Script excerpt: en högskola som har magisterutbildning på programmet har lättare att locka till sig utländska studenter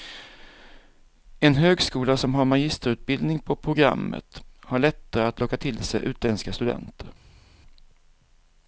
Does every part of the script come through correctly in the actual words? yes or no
yes